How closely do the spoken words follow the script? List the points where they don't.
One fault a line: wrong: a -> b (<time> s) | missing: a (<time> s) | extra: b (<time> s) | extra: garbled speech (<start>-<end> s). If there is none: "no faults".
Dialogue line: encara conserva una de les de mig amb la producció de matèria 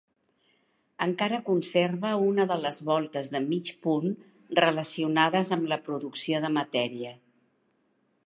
extra: voltes (2.9 s)
extra: punt relacionades (3.9 s)